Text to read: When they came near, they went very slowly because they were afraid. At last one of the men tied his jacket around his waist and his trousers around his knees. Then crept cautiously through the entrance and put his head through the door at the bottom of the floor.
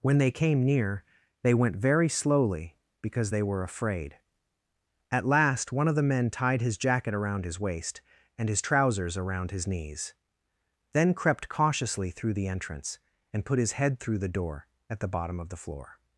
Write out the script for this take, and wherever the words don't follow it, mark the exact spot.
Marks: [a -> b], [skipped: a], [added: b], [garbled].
When they came near, they went very slowly because they were afraid. At last one of the men tied his jacket around his waist and his trousers around his knees. Then crept cautiously through the entrance and put his head through the door at the bottom of the floor.